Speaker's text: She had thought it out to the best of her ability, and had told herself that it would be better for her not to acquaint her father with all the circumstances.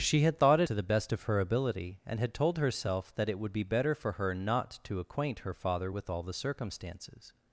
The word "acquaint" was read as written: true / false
true